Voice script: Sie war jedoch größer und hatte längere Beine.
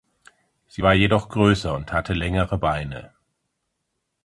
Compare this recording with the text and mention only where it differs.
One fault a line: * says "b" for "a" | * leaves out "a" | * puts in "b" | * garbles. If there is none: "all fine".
all fine